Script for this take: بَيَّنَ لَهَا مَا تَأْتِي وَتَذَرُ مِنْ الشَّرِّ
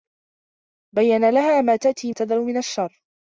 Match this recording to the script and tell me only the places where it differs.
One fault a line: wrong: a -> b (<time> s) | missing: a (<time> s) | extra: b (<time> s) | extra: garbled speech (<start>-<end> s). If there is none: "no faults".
no faults